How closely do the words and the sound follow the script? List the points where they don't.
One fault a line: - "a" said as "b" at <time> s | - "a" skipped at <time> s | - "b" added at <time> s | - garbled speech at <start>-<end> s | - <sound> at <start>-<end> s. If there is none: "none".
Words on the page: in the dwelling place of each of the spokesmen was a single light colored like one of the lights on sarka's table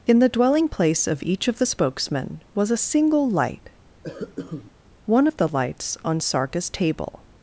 - "colored like" skipped at 3.7 s
- cough at 4.0-4.7 s